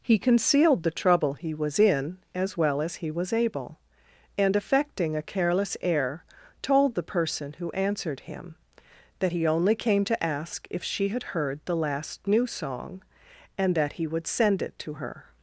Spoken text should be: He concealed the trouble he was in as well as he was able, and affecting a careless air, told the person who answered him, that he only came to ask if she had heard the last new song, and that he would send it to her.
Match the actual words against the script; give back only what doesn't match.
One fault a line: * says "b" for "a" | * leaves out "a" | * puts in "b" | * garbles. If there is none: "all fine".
all fine